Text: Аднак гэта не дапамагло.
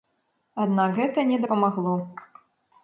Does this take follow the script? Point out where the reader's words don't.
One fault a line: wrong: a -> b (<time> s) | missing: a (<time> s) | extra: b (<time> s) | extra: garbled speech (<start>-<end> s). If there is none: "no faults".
no faults